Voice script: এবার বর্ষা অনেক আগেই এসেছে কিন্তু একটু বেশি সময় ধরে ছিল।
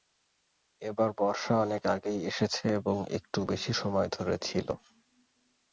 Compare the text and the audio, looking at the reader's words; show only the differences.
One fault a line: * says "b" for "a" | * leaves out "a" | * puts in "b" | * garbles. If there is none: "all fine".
* says "এবং" for "কিন্তু"